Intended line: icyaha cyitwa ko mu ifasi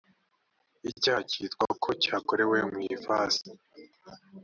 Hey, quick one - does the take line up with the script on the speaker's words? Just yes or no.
no